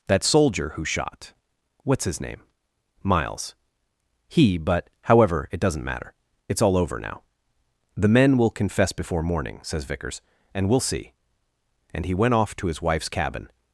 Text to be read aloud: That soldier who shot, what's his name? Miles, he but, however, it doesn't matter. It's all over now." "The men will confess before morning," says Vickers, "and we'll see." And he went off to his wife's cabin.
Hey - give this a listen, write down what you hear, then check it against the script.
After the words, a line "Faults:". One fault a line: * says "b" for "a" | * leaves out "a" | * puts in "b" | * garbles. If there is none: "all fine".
That soldier who shot, what's his name? Miles, he but, however, it doesn't matter. It's all over now." "The men will confess before morning," says Vickers, "and we'll see." And he went off to his wife's cabin.
Faults:
all fine